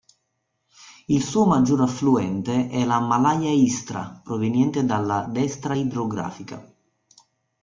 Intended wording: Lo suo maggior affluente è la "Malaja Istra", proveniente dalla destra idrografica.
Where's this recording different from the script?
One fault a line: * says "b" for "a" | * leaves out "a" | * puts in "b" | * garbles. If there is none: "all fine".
* says "Il" for "Lo"